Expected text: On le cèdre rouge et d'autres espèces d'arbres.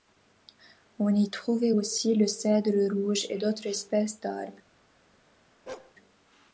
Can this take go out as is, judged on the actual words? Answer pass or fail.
fail